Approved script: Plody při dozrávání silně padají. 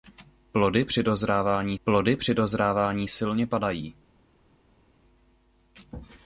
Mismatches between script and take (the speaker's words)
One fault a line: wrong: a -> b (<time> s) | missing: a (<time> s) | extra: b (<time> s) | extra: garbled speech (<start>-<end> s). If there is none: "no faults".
extra: plody při dozrávání (1.8 s)